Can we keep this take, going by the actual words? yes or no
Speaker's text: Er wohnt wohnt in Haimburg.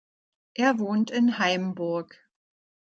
no